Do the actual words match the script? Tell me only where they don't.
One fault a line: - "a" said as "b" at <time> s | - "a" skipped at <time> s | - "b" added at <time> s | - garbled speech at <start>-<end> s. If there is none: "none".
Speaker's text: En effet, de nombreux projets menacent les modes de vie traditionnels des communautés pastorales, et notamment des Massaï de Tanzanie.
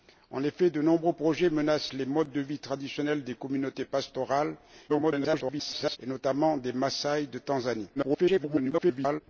- garbled speech at 4.9-6.0 s
- garbled speech at 8.0-9.2 s